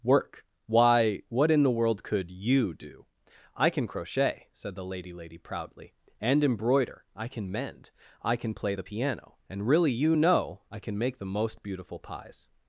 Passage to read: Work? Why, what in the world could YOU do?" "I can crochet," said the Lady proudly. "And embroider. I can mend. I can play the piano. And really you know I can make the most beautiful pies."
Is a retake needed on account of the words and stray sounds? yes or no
yes